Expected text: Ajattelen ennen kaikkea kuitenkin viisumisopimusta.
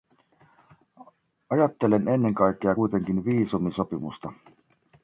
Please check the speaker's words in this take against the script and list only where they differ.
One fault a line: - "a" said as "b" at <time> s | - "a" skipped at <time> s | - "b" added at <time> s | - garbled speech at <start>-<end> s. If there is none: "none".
none